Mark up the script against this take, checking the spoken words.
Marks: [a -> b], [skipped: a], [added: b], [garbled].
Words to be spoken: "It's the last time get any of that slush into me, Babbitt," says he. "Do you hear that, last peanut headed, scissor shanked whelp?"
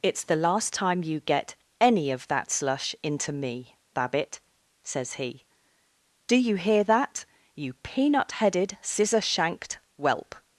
"It's the last time [added: you] get any of that slush into me, Babbitt," says he. "Do you hear that, [last -> you] peanut headed, scissor shanked whelp?"